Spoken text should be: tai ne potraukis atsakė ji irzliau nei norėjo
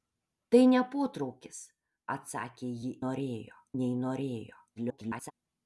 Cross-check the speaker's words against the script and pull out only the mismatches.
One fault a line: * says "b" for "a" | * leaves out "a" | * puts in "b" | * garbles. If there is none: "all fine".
* says "norėjo" for "irzliau"
* garbles